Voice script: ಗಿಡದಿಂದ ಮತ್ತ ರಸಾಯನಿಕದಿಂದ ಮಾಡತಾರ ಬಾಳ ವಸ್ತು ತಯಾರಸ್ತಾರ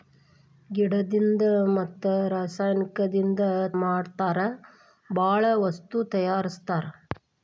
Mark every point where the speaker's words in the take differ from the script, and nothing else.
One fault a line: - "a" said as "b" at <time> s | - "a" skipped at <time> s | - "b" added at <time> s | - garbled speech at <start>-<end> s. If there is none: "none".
none